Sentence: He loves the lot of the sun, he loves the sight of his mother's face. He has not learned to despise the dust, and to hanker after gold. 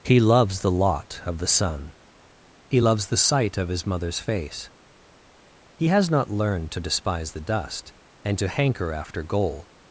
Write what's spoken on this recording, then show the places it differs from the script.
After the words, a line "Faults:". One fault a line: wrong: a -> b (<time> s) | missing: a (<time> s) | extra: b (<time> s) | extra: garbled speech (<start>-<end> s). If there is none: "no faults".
He loves the lot of the sun, he loves the sight of his mother's face. He has not learned to despise the dust, and to hanker after gold.
Faults:
no faults